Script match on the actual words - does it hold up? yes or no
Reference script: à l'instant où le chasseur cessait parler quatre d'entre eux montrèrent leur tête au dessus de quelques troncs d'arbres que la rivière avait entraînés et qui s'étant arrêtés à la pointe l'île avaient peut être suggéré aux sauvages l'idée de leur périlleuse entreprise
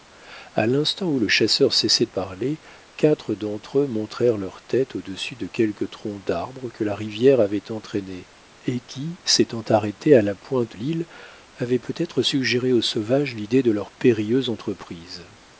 yes